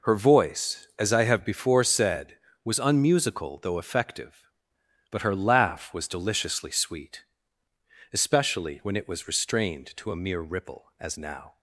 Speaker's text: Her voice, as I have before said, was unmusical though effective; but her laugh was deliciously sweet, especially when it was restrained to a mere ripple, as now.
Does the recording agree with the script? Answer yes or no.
yes